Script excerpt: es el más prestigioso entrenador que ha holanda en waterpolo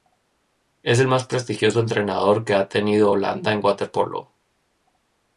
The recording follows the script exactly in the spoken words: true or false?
false